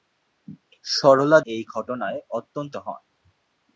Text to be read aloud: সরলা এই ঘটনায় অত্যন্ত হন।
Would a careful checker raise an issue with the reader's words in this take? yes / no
no